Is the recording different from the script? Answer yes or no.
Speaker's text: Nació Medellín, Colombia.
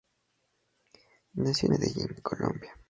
no